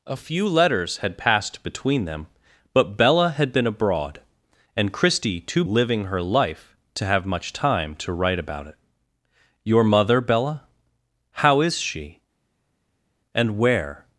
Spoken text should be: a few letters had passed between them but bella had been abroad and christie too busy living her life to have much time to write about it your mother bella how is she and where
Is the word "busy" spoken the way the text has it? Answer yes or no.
no